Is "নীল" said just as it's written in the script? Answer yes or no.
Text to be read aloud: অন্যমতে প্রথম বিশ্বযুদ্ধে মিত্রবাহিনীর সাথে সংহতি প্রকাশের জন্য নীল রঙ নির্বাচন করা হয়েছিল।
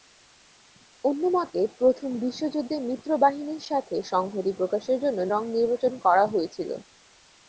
no